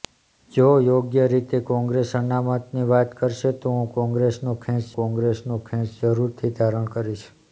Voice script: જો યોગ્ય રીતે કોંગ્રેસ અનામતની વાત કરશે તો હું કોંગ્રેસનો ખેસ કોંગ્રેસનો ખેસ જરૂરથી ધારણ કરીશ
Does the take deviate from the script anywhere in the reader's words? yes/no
no